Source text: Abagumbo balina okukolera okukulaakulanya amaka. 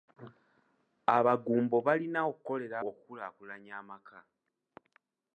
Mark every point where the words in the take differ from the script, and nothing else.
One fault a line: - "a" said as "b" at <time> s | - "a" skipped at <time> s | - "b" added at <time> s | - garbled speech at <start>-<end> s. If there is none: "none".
none